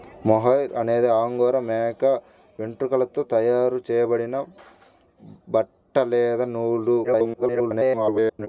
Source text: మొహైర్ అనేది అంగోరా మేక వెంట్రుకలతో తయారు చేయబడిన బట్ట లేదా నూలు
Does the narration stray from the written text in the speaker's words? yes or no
yes